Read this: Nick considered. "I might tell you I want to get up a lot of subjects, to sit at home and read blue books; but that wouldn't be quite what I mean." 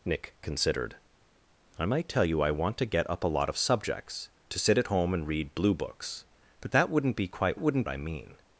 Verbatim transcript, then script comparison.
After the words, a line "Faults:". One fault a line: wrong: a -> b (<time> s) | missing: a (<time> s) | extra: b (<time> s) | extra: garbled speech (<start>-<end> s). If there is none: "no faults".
Nick considered. "I might tell you I want to get up a lot of subjects, to sit at home and read blue books; but that wouldn't be quite wouldn't I mean."
Faults:
wrong: what -> wouldn't (7.6 s)